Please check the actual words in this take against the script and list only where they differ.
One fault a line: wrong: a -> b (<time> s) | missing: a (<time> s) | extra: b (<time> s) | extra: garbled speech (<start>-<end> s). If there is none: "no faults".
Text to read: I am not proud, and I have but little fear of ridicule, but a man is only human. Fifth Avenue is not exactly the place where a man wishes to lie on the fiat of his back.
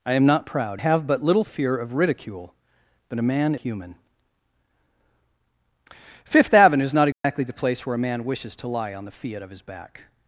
missing: and I (0.8 s)
missing: is only (3.6 s)